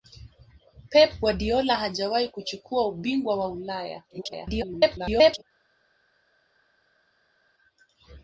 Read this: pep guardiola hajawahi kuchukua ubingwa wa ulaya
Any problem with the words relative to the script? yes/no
yes